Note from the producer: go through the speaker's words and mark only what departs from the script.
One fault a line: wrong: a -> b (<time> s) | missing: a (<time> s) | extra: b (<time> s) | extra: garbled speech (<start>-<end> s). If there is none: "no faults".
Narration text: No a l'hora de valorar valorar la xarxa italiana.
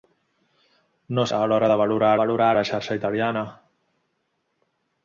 no faults